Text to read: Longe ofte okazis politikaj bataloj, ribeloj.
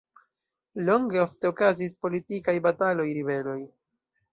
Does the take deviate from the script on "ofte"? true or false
false